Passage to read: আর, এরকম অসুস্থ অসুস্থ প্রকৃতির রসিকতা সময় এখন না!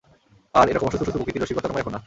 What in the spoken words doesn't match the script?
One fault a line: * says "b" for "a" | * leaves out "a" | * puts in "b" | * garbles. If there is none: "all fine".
all fine